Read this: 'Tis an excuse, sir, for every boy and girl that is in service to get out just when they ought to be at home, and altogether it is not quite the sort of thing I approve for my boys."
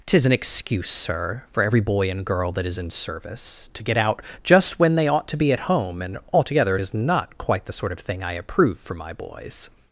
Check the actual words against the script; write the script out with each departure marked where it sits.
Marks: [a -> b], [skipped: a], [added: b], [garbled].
'Tis an excuse, sir, for every boy and girl that is in service to get out just when they ought to be at home, and altogether it is not quite the sort of thing I approve for my boys."